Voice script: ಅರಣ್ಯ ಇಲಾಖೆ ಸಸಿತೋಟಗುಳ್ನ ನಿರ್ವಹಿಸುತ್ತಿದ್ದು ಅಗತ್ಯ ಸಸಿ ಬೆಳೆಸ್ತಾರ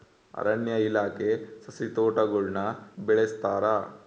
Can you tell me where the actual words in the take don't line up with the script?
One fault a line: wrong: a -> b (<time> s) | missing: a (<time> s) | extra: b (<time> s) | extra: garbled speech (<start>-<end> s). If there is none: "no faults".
missing: ನಿರ್ವಹಿಸುತ್ತಿದ್ದು ಅಗತ್ಯ ಸಸಿ (2.6 s)